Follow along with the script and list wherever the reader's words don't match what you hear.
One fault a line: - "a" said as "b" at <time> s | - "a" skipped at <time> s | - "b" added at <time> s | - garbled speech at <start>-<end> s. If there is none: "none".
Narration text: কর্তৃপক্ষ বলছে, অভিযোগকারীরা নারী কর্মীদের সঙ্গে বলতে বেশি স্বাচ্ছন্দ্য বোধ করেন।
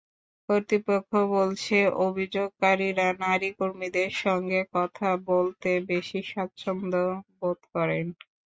- "কথা" added at 4.8 s